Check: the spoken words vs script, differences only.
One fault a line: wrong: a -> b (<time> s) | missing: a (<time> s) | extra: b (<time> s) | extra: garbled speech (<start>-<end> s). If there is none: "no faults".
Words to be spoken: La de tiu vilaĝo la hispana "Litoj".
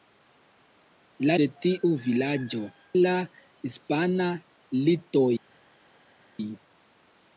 no faults